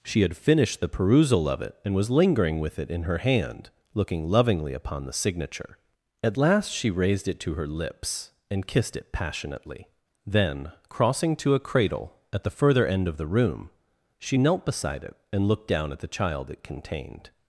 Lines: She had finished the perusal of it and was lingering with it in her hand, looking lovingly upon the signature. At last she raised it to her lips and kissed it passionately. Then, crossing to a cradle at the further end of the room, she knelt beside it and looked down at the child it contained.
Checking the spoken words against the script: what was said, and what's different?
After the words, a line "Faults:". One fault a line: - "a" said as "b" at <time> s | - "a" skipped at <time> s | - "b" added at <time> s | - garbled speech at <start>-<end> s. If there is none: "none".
She had finished the perusal of it and was lingering with it in her hand, looking lovingly upon the signature. At last she raised it to her lips and kissed it passionately. Then, crossing to a cradle at the further end of the room, she knelt beside it and looked down at the child it contained.
Faults:
none